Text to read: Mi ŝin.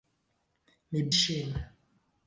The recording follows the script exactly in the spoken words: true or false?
true